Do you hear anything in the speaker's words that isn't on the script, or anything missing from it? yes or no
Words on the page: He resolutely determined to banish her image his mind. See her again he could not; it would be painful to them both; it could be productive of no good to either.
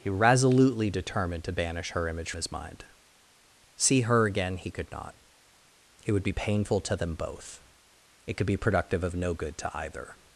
no